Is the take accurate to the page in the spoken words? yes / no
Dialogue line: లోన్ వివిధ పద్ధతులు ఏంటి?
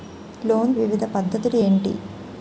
yes